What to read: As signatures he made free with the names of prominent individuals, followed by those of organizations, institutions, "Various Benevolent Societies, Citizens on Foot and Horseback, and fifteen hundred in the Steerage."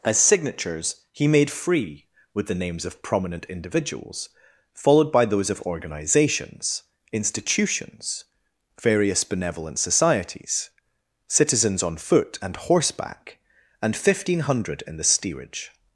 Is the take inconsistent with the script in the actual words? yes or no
no